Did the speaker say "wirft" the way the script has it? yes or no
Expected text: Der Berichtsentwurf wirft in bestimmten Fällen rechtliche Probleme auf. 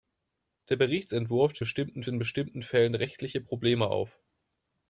no